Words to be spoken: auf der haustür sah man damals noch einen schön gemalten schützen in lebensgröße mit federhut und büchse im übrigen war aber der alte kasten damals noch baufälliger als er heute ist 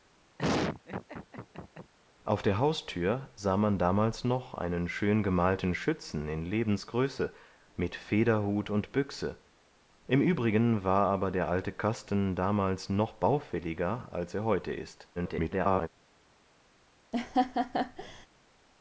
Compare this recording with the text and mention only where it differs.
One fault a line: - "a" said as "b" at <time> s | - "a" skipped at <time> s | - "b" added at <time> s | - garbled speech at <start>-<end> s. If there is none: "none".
- garbled speech at 15.2-15.9 s